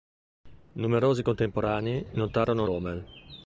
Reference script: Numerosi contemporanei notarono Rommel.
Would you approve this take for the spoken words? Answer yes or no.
yes